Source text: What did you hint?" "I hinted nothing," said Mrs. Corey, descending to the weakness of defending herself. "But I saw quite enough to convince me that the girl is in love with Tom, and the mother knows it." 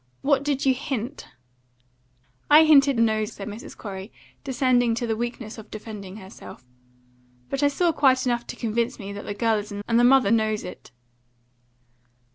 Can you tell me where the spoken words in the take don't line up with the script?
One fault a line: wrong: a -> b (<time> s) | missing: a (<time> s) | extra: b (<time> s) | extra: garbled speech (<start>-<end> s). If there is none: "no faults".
wrong: nothing -> knows (3.0 s)
missing: love with Tom (9.8 s)